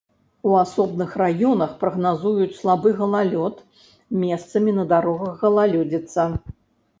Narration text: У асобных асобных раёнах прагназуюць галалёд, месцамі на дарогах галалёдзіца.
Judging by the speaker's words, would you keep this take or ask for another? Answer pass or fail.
fail